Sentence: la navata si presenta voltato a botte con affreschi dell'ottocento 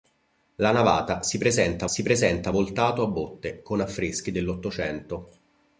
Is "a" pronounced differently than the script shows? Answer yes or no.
no